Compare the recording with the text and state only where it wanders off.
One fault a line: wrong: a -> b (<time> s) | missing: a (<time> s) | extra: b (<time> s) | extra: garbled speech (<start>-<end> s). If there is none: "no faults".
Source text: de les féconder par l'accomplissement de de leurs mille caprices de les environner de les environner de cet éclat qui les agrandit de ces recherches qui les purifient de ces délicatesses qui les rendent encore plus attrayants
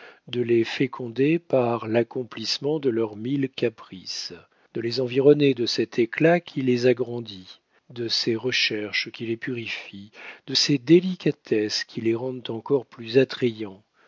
missing: de (2.9 s)
missing: les environner de (5.7 s)